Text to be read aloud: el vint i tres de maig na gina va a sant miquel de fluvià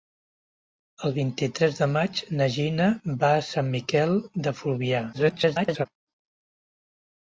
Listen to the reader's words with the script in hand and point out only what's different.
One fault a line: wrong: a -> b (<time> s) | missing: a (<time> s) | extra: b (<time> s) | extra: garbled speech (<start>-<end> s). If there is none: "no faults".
extra: garbled speech (5.1-5.9 s)